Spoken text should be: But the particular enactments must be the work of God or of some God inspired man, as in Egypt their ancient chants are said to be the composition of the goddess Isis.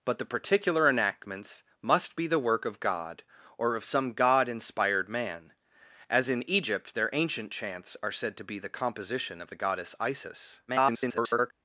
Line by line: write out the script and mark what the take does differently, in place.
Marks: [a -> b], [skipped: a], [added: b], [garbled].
But the particular enactments must be the work of God or of some God inspired man, as in Egypt their ancient chants are said to be the composition of the goddess Isis. [garbled]